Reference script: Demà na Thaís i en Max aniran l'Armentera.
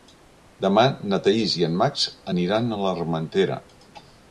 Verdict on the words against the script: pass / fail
fail